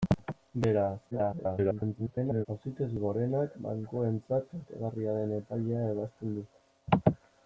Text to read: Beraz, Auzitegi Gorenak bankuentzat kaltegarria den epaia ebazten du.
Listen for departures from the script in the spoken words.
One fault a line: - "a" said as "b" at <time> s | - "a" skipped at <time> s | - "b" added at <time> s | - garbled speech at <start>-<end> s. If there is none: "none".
- garbled speech at 1.1-2.5 s